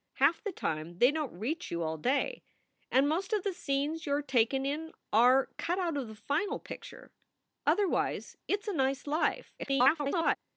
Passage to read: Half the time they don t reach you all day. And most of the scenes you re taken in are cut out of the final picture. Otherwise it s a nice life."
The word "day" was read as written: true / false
true